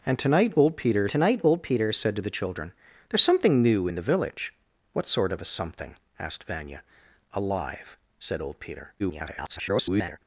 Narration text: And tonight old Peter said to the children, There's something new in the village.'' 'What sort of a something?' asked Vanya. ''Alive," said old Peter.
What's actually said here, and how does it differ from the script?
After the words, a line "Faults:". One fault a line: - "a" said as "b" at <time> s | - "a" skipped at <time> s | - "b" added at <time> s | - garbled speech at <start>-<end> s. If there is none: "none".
And tonight old Peter tonight old Peter said to the children, There's something new in the village.'' 'What sort of a something?' asked Vanya. ''Alive," said old Peter. [garbled]
Faults:
- "tonight old Peter" added at 1.1 s
- garbled speech at 9.0-10.2 s